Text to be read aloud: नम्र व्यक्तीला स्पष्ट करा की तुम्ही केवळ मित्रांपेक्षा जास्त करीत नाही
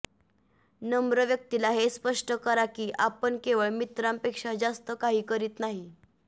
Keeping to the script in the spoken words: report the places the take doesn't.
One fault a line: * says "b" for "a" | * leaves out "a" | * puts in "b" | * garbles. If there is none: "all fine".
* puts in "हे"
* says "आपण" for "तुम्ही"
* puts in "काही"